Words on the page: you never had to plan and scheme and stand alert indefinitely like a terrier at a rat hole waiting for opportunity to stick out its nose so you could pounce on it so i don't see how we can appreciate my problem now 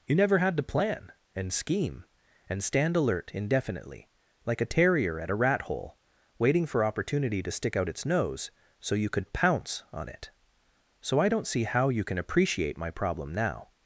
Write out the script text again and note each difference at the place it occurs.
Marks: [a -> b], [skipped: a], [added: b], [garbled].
you never had to plan and scheme and stand alert indefinitely like a terrier at a rat hole waiting for opportunity to stick out its nose so you could pounce on it so i don't see how [we -> you] can appreciate my problem now